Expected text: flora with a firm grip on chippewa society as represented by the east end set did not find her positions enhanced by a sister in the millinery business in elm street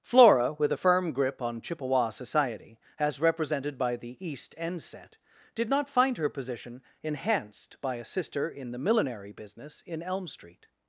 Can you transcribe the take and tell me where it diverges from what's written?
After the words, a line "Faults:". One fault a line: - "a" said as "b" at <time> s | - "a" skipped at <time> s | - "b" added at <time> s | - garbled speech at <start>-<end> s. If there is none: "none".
flora with a firm grip on chippewa society as represented by the east end set did not find her position enhanced by a sister in the millinery business in elm street
Faults:
- "positions" said as "position" at 6.3 s